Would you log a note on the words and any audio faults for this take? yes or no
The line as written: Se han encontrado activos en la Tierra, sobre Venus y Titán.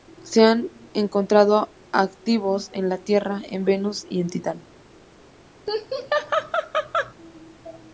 yes